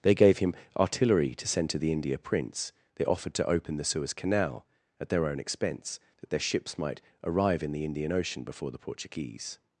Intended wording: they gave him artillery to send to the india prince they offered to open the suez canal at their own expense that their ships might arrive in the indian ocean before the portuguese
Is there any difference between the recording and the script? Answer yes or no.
no